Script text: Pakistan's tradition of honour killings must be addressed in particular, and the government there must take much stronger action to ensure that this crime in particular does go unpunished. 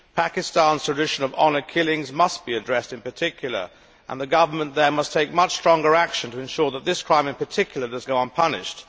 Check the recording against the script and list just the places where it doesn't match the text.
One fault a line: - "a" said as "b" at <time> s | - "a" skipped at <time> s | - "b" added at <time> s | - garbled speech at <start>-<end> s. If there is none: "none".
none